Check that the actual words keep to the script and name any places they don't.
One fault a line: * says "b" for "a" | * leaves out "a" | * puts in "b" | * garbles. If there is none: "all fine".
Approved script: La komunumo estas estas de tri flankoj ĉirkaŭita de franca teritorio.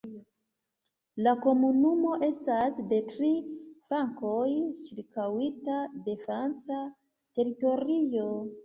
* leaves out "estas"